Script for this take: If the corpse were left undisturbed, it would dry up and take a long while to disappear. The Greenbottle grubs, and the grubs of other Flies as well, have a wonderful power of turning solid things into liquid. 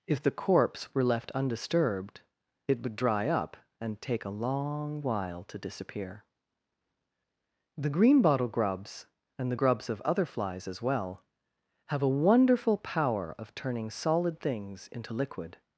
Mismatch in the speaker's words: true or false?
false